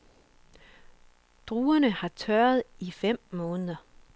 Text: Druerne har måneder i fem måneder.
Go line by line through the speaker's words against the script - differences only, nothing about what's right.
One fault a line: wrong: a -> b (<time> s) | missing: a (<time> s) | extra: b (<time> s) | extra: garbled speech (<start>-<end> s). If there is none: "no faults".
wrong: måneder -> tørret (2.1 s)